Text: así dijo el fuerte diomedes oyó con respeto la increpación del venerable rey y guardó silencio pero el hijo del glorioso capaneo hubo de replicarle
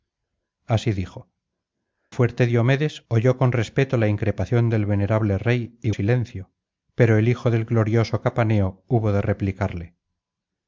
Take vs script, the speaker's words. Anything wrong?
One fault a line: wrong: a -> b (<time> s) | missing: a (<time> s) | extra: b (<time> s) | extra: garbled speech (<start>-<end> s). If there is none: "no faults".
missing: el (1.3 s)
missing: guardó (5.9 s)